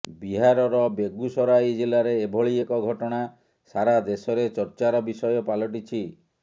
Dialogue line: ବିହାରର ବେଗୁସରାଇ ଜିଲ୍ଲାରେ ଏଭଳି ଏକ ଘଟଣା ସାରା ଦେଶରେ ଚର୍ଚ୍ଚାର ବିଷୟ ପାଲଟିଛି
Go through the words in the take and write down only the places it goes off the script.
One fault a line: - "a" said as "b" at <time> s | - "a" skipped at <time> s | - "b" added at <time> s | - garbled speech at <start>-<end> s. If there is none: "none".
none